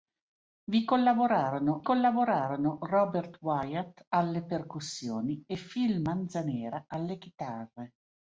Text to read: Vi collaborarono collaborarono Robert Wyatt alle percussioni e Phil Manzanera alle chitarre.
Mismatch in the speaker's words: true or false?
false